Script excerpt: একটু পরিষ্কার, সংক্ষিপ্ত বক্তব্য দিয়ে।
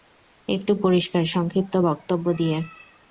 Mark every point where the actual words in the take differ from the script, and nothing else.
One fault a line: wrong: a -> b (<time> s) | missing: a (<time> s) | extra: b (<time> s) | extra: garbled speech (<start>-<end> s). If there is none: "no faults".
no faults